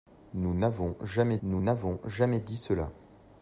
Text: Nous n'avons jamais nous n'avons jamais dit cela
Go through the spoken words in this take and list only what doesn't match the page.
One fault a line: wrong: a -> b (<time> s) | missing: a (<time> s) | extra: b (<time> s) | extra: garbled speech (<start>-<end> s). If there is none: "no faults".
no faults